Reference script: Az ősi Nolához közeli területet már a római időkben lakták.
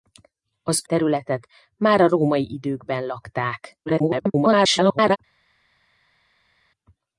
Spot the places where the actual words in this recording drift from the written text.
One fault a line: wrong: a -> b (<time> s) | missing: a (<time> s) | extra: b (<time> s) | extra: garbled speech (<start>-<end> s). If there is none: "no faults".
missing: ősi Nolához közeli (0.8 s)
extra: garbled speech (3.9-5.2 s)